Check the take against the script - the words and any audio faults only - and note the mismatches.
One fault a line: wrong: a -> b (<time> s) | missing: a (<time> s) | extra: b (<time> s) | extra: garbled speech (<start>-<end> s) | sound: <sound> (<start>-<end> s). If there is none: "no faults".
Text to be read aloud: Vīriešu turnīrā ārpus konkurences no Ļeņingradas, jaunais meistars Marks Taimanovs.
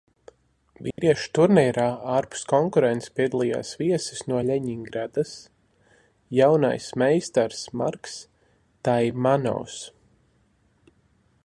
sound: dropout (0.9-1.0 s)
extra: piedalījās viesis (3.2 s)